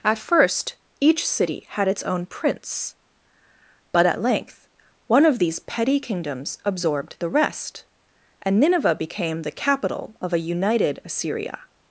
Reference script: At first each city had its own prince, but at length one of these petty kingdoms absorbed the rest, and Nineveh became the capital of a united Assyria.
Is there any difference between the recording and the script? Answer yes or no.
no